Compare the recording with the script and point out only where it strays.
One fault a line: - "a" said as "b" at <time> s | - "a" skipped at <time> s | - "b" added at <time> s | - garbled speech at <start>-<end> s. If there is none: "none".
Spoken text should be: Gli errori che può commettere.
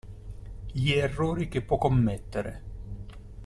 none